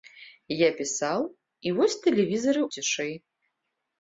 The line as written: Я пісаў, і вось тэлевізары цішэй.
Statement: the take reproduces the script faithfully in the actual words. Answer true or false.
true